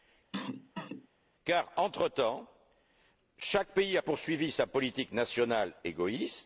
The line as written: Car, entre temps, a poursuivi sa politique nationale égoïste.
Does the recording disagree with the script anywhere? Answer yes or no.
yes